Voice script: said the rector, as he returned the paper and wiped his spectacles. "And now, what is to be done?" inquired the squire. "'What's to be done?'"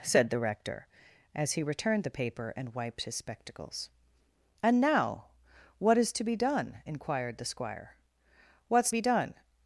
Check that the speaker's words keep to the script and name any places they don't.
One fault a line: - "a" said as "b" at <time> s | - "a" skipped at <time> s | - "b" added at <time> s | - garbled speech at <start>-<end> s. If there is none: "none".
- "to" skipped at 8.9 s